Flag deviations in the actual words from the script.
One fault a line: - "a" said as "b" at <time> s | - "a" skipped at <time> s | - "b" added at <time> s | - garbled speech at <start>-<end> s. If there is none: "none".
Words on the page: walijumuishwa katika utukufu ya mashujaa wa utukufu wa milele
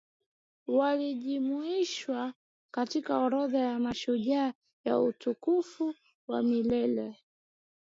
- "utukufu" said as "orodha" at 3.2 s